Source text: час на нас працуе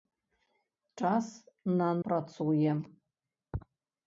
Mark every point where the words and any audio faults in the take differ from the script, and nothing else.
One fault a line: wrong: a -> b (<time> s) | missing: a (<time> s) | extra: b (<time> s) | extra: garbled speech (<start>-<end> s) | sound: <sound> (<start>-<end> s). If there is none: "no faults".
missing: нас (1.9 s)